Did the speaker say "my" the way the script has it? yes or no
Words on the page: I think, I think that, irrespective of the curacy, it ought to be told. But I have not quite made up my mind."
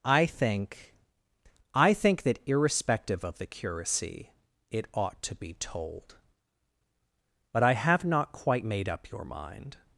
no